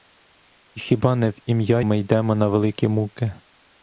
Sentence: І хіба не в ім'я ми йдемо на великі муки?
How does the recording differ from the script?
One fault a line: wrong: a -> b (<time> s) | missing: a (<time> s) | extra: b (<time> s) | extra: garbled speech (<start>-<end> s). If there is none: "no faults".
no faults